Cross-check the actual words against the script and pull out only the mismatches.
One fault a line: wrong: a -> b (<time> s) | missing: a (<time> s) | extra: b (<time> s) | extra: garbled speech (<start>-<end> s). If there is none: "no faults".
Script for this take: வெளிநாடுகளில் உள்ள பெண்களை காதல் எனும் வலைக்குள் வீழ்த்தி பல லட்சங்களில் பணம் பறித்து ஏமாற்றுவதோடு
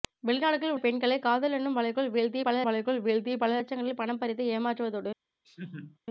missing: உள்ள (0.8 s)
extra: வலைக்குள் வீழ்த்தி பல (2.6 s)